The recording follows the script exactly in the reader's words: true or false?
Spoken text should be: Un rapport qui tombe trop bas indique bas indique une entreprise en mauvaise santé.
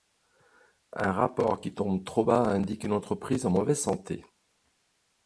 false